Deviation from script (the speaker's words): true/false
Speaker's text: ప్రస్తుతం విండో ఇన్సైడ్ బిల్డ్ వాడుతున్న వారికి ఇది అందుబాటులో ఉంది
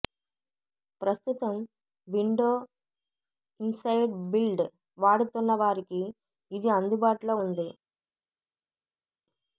false